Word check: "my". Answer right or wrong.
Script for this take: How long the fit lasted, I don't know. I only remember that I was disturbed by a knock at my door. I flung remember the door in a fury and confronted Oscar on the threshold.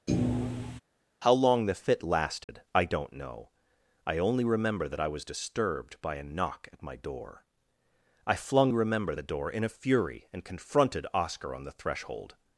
right